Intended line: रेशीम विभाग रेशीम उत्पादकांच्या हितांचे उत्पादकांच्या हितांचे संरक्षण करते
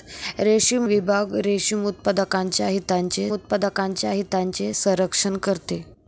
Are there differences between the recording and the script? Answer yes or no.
no